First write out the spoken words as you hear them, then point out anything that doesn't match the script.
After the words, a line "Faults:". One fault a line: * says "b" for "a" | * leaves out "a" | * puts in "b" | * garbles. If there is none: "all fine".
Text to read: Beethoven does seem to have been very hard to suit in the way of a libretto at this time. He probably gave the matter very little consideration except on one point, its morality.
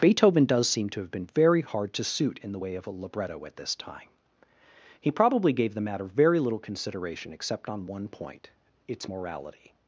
Beethoven does seem to have been very hard to suit in the way of a libretto at this time. He probably gave the matter very little consideration except on one point, its morality.
Faults:
all fine